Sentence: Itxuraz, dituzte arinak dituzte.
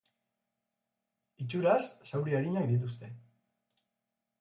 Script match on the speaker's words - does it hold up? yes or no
no